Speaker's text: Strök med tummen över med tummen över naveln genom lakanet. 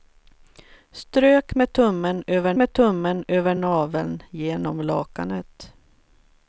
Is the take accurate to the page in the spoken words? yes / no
yes